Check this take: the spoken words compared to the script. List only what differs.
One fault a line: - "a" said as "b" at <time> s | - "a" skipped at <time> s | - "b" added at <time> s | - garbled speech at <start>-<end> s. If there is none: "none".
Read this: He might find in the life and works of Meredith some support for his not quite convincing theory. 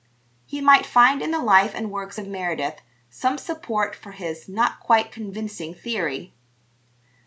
none